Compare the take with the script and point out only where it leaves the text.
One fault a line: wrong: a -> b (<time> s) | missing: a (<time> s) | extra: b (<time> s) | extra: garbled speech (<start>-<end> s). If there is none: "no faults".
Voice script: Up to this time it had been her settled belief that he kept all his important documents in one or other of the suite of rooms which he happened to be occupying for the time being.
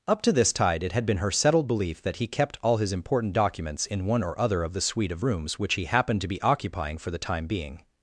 wrong: time -> tide (0.5 s)